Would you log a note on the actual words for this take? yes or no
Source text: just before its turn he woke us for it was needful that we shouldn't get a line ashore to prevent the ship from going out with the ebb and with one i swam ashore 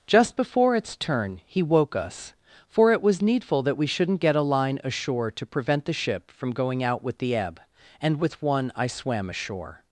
no